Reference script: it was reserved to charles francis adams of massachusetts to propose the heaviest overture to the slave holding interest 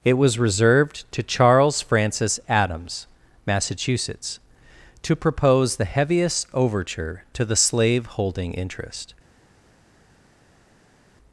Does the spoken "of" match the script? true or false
false